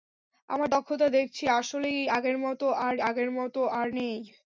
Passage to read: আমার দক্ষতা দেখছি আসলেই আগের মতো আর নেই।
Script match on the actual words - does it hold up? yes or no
no